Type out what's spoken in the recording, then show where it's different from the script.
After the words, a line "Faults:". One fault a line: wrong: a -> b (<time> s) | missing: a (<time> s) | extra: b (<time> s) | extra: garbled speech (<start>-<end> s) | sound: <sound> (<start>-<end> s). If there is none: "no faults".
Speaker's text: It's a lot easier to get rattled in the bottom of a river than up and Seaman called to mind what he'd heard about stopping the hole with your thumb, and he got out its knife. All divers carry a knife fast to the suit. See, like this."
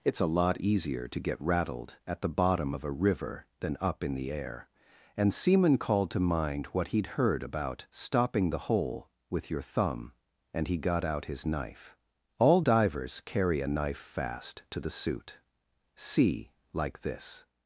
It's a lot easier to get rattled at the bottom of a river than up in the air, and Seaman called to mind what he'd heard about stopping the hole with your thumb, and he got out his knife. All divers carry a knife fast to the suit. See, like this."
Faults:
wrong: in -> at (2.1 s)
extra: in the air (4.0 s)
wrong: its -> his (11.2 s)